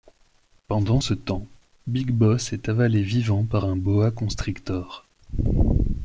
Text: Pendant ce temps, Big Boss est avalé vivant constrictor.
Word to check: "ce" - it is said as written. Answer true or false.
true